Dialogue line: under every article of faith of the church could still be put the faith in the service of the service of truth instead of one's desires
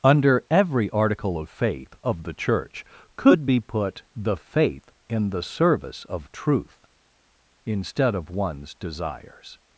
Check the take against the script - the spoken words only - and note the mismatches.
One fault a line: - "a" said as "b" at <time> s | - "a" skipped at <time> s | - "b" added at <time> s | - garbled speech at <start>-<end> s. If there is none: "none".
- "still" skipped at 3.5 s
- "the service of" skipped at 6.3 s